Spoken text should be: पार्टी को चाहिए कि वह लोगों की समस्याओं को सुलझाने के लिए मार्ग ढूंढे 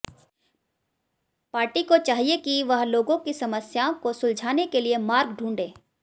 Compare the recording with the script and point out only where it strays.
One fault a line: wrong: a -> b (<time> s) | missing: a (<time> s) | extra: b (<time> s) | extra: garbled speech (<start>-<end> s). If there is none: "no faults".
no faults